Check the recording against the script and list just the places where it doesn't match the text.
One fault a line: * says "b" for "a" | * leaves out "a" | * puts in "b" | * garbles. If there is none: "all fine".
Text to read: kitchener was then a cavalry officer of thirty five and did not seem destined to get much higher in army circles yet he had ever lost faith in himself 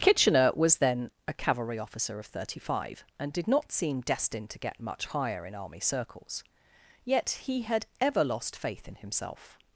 all fine